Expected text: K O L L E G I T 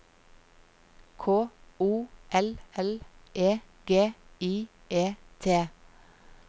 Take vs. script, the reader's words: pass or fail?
fail